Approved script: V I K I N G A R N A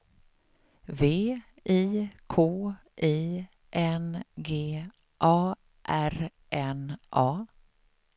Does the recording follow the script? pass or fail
pass